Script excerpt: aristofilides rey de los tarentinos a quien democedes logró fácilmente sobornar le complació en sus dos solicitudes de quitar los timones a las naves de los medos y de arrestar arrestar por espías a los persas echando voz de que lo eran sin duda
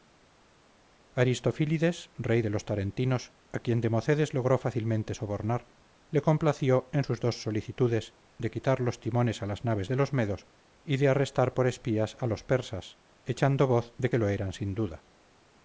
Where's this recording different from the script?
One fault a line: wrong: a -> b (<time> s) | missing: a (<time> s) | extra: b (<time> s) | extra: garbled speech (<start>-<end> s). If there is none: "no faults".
missing: arrestar (11.6 s)